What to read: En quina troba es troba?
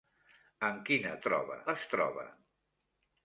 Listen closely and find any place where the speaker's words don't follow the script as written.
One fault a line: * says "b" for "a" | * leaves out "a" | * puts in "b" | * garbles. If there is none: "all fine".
all fine